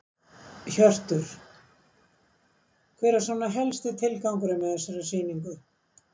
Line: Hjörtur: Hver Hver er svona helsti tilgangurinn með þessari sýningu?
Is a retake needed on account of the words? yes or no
yes